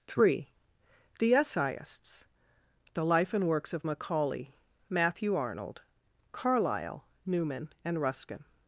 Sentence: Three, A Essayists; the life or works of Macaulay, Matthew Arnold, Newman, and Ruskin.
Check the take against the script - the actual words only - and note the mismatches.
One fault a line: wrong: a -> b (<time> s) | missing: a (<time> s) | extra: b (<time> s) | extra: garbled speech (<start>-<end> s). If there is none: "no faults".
wrong: A -> The (1.2 s)
wrong: or -> and (3.3 s)
extra: Carlyle (6.3 s)